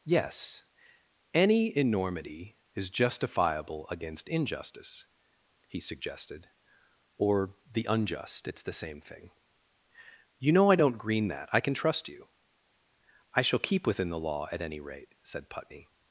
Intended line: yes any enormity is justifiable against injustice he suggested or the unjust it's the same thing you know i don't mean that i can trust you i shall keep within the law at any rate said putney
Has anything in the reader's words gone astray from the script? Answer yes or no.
yes